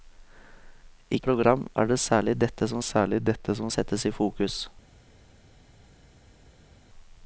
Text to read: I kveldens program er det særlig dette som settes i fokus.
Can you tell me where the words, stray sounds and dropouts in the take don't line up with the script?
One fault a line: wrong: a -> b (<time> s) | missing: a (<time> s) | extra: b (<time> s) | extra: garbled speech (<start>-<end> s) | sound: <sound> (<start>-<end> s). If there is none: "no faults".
missing: kveldens (1.2 s)
extra: særlig dette som (2.8 s)